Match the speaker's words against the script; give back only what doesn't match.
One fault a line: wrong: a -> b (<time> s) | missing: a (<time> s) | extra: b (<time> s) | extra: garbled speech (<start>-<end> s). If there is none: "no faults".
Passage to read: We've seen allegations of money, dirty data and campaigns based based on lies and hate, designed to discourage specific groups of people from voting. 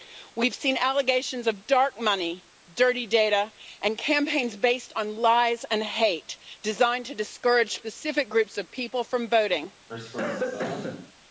extra: dark (1.7 s)
missing: based (4.9 s)